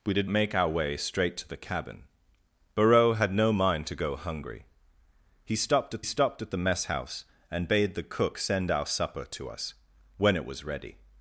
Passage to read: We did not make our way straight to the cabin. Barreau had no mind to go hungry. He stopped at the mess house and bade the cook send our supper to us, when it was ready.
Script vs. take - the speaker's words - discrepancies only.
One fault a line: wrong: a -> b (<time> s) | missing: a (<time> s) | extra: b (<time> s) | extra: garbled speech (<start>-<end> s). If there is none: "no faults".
missing: not (0.3 s)
extra: stopped at (6.0 s)